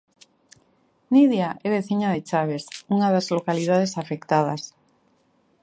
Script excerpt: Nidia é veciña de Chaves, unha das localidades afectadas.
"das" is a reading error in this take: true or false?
false